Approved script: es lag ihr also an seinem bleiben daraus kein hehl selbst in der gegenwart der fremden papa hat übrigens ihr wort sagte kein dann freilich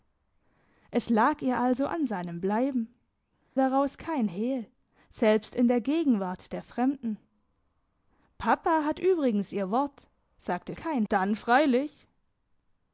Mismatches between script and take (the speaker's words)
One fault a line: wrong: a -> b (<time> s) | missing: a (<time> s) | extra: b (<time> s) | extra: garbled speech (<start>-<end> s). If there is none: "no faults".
no faults